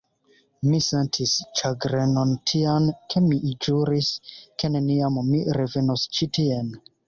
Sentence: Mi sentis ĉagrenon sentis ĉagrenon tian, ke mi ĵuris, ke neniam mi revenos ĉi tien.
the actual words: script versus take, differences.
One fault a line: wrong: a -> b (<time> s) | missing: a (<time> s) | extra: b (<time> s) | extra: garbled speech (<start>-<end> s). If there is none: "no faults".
missing: sentis ĉagrenon (2.3 s)